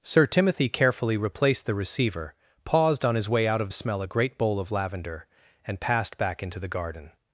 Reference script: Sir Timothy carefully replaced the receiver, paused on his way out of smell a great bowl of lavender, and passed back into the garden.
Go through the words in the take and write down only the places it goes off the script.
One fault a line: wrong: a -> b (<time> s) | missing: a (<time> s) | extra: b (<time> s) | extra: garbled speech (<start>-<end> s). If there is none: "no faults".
no faults